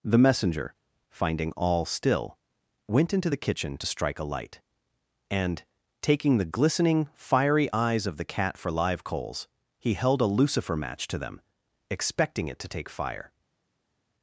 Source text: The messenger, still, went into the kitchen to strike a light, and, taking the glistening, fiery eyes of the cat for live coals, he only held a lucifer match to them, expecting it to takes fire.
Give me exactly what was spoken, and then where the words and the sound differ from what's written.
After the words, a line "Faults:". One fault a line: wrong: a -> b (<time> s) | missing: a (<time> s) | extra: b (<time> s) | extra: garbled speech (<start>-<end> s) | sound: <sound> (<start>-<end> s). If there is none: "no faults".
The messenger, finding all still, went into the kitchen to strike a light, and, taking the glistening, fiery eyes of the cat for live coals, he held a lucifer match to them, expecting it to take fire.
Faults:
extra: finding all (1.1 s)
missing: only (9.9 s)
wrong: takes -> take (12.7 s)